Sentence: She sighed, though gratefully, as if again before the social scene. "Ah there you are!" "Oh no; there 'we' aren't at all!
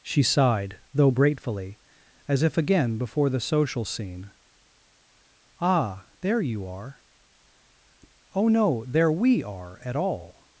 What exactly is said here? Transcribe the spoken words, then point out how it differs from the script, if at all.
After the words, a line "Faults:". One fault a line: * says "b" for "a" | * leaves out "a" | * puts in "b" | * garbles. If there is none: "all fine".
She sighed, though gratefully, as if again before the social scene. "Ah there you are!" "Oh no; there 'we' are at all!
Faults:
* says "are" for "aren't"